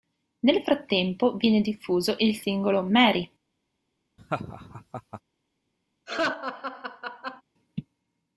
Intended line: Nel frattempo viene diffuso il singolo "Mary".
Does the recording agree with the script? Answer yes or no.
yes